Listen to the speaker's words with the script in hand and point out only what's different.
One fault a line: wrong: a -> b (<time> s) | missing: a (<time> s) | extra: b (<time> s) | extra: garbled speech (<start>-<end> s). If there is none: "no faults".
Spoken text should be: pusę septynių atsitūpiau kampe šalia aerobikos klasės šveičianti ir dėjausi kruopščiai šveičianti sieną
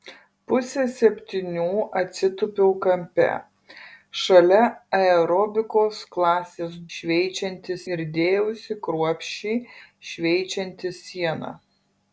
no faults